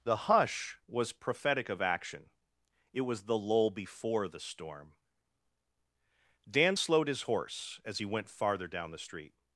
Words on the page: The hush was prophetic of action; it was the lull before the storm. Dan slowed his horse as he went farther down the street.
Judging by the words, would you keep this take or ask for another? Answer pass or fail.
pass